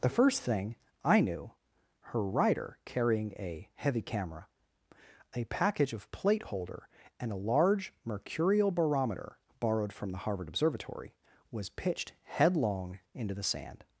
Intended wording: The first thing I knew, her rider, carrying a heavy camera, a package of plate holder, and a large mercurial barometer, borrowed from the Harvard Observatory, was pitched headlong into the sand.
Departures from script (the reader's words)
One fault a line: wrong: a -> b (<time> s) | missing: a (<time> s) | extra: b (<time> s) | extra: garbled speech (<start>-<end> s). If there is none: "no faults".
no faults